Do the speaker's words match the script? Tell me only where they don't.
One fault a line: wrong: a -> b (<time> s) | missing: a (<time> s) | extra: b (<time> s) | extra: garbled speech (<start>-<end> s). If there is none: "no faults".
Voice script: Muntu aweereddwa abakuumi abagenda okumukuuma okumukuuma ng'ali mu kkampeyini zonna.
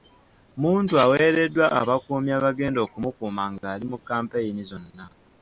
missing: okumukuuma (3.4 s)